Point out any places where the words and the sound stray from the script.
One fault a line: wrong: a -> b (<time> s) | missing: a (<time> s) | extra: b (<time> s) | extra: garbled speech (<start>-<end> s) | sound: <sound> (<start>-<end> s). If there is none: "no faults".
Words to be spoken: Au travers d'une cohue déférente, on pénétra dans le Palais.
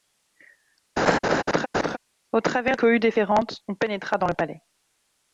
sound: laugh (1.0-2.0 s)
missing: d'une (2.8 s)